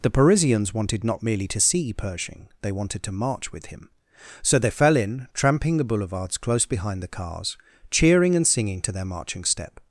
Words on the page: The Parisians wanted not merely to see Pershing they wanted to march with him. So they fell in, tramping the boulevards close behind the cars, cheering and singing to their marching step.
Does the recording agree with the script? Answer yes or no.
yes